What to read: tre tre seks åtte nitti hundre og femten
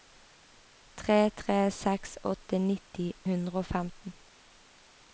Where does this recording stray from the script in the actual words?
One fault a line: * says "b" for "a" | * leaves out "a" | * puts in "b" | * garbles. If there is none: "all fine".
all fine